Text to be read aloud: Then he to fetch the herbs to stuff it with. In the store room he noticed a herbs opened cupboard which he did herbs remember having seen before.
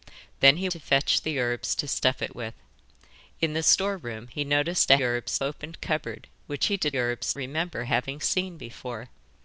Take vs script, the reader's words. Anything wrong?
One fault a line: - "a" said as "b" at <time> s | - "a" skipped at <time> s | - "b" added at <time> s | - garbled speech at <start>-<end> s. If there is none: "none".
none